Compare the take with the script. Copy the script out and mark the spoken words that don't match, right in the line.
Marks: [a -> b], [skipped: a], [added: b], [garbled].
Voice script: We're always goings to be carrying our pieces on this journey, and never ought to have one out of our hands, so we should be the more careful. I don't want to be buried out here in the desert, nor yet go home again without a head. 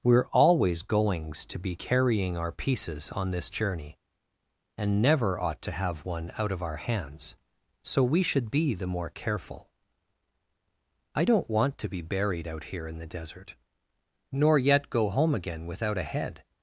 We're always goings to be carrying our pieces on this journey, and never ought to have one out of our hands, so we should be the more careful. I don't want to be buried out here in the desert, nor yet go home again without a head.